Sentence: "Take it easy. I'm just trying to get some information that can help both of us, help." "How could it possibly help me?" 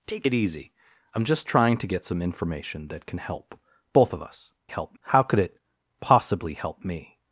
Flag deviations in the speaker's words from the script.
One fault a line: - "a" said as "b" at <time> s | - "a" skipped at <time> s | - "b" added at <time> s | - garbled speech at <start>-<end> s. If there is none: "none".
none